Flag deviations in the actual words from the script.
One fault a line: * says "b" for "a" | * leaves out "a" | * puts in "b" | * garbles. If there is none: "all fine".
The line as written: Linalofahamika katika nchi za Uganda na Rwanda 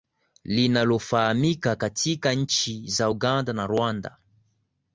all fine